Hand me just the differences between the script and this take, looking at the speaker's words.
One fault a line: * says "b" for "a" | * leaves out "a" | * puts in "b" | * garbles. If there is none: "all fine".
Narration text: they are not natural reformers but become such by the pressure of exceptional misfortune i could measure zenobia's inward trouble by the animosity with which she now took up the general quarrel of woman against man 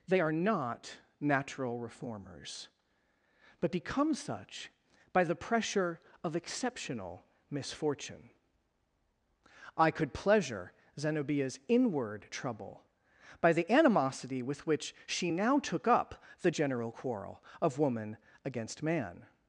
* says "pleasure" for "measure"